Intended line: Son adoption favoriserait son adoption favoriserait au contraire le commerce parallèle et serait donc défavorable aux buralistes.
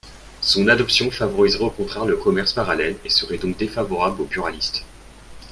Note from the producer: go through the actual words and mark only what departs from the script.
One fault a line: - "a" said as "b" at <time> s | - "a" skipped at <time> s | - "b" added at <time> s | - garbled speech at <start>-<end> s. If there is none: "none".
- "son adoption favoriserait" skipped at 1.6 s